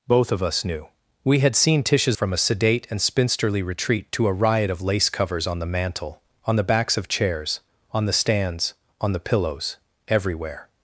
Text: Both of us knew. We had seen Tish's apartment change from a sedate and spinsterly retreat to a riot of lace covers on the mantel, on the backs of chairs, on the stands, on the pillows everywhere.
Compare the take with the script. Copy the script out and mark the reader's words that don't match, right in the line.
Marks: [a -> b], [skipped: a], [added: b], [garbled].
Both of us knew. We had seen Tish's [skipped: apartment change] from a sedate and spinsterly retreat to a riot of lace covers on the mantel, on the backs of chairs, on the stands, on the pillows everywhere.